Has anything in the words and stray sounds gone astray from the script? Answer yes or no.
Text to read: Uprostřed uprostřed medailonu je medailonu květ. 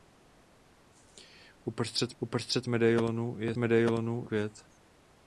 no